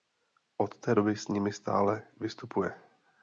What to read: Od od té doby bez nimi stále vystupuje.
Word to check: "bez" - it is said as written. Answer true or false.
false